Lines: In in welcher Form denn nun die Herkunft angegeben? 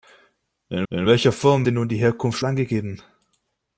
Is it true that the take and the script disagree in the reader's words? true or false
false